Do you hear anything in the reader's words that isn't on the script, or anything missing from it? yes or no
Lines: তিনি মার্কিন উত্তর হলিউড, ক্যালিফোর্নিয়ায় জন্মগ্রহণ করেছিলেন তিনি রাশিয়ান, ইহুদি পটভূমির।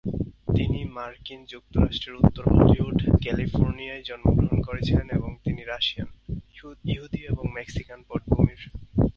yes